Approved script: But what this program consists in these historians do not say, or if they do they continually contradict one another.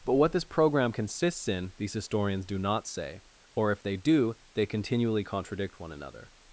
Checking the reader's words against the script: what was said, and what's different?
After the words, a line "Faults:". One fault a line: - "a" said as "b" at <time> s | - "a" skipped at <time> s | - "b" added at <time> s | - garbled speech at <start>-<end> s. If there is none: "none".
But what this program consists in these historians do not say, or if they do they continually contradict one another.
Faults:
none